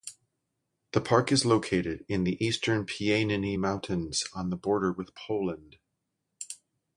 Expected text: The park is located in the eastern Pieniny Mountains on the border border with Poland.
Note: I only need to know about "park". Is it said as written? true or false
true